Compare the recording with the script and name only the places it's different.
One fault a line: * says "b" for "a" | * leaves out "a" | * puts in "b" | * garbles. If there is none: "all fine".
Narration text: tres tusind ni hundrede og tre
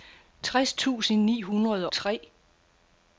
* leaves out "og"